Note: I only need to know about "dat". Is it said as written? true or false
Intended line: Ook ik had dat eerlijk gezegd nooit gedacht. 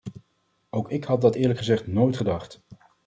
true